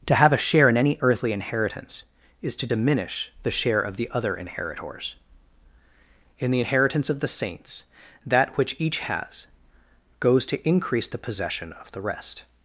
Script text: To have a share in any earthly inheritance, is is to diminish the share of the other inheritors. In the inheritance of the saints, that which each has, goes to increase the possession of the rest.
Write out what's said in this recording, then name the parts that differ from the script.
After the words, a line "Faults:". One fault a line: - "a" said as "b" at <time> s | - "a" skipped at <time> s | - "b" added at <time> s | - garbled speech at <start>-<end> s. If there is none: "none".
To have a share in any earthly inheritance, is to diminish the share of the other inheritors. In the inheritance of the saints, that which each has, goes to increase the possession of the rest.
Faults:
- "is" skipped at 2.5 s